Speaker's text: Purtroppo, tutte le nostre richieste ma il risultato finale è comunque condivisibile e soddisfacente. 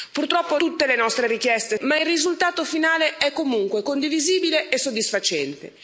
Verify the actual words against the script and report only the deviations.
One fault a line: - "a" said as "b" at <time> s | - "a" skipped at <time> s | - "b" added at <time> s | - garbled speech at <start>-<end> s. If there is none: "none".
none